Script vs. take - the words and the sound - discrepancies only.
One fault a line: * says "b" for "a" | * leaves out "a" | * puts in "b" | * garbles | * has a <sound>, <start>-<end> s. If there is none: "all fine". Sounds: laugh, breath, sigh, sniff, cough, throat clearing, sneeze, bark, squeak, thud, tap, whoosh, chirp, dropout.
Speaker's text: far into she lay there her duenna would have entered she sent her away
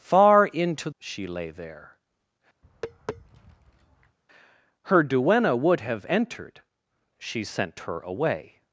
* has a tap, 2.6-4.2 s